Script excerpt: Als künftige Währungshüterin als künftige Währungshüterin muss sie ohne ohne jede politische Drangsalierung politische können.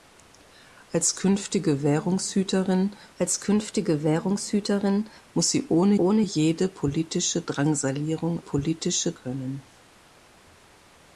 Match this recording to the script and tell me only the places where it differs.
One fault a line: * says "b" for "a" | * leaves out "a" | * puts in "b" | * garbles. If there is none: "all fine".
all fine